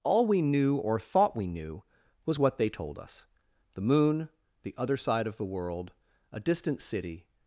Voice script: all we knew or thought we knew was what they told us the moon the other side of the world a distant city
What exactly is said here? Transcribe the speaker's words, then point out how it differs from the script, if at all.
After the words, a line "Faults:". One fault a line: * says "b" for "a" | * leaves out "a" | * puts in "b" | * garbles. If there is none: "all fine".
all we knew or thought we knew was what they told us the moon the other side of the world a distant city
Faults:
all fine